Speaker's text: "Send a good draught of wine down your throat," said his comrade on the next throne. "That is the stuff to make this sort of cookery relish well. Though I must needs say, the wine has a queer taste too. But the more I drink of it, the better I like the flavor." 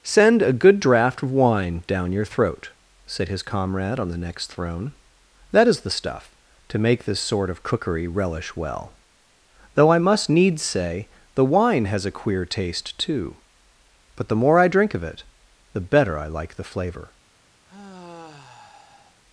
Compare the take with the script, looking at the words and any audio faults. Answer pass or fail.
fail